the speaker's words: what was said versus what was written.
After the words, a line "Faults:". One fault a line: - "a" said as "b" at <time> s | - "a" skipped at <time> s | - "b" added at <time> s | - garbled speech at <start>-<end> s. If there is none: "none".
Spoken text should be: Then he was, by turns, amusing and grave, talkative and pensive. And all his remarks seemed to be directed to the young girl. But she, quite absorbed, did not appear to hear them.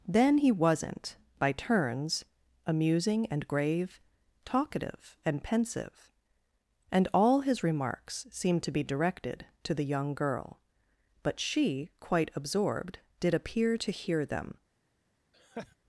Then he wasn't, by turns, amusing and grave, talkative and pensive. And all his remarks seemed to be directed to the young girl. But she, quite absorbed, did appear to hear them.
Faults:
- "was" said as "wasn't" at 0.5 s
- "not" skipped at 13.3 s